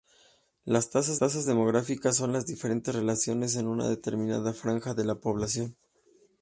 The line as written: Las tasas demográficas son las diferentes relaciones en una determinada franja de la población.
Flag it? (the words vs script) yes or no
yes